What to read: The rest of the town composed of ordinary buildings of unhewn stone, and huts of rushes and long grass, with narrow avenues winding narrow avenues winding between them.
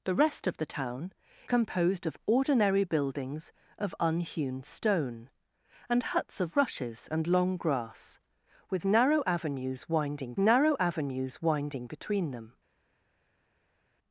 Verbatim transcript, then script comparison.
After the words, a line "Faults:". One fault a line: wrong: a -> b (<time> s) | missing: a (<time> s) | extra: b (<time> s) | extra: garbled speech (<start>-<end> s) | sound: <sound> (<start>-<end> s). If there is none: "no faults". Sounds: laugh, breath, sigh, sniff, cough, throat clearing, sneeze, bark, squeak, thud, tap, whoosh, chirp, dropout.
The rest of the town composed of ordinary buildings of unhewn stone, and huts of rushes and long grass, with narrow avenues winding narrow avenues winding between them.
Faults:
no faults